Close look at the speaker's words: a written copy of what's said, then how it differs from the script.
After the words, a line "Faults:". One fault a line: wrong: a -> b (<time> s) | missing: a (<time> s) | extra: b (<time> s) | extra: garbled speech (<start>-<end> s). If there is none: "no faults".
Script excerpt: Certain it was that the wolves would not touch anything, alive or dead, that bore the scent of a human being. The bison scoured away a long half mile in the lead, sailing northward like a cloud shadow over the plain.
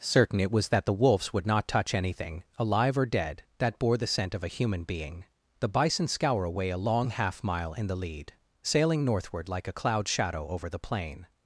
Certain it was that the wolves would not touch anything, alive or dead, that bore the scent of a human being. The bison scour away a long half mile in the lead, sailing northward like a cloud shadow over the plain.
Faults:
wrong: scoured -> scour (6.1 s)